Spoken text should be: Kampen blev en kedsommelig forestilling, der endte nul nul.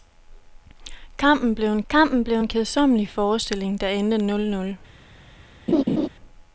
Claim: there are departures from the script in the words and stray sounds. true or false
true